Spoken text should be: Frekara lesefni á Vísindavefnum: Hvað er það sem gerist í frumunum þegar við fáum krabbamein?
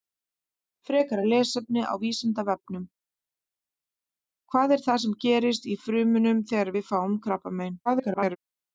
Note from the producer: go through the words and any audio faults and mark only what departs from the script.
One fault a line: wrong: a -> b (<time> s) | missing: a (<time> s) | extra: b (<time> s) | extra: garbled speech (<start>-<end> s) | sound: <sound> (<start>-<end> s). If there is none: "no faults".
extra: garbled speech (7.9-8.4 s)